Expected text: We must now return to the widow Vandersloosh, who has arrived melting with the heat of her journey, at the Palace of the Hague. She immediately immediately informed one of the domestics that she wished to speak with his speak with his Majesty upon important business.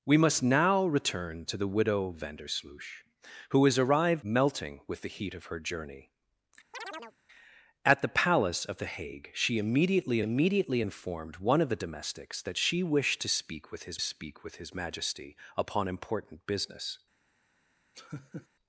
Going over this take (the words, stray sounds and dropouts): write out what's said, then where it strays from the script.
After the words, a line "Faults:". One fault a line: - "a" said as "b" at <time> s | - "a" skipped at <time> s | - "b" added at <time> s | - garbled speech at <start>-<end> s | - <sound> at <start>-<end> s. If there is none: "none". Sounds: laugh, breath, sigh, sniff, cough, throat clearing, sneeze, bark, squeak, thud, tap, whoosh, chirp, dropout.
We must now return to the widow Vandersloosh, who has arrived melting with the heat of her journey, at the Palace of the Hague. She immediately immediately informed one of the domestics that she wished to speak with his speak with his Majesty upon important business.
Faults:
- chirp at 6.7-7.2 s
- laugh at 17.9-18.5 s